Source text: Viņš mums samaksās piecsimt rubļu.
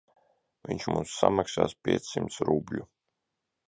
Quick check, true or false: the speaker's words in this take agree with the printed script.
true